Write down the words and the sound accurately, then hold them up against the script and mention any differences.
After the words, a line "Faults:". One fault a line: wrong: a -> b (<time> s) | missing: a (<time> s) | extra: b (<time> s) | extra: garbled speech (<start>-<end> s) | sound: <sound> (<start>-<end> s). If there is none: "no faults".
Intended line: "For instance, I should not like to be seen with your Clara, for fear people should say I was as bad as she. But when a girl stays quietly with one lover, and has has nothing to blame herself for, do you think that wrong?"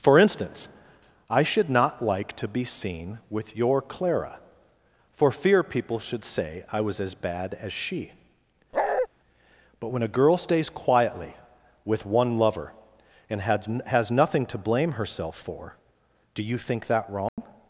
"For instance, I should not like to be seen with your Clara, for fear people should say I was as bad as she. But when a girl stays quietly with one lover, and has has nothing to blame herself for, do you think that wrong?"
Faults:
sound: bark (8.7-9.1 s)
sound: dropout (17.3-17.4 s)